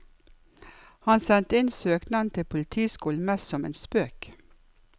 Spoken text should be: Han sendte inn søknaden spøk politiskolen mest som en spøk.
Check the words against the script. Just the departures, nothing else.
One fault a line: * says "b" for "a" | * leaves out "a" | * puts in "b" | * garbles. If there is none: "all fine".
* says "til" for "spøk"